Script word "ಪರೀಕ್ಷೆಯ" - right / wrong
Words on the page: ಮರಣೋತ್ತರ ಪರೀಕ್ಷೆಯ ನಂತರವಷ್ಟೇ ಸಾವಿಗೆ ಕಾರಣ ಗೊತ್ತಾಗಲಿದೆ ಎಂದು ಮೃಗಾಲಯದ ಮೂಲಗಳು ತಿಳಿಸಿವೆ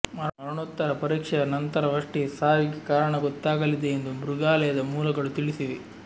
right